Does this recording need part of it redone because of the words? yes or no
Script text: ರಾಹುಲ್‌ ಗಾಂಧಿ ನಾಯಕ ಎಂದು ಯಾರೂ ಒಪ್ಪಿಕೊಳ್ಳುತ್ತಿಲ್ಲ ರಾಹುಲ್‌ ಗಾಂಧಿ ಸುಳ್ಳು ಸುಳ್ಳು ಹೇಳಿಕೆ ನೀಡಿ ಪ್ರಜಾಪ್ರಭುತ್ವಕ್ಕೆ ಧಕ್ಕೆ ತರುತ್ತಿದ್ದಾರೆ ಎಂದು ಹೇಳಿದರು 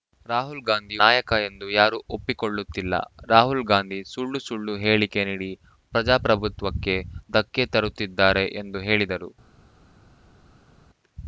no